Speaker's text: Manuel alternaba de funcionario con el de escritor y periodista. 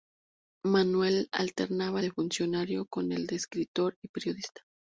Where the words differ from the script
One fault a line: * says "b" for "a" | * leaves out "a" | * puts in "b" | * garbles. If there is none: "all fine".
all fine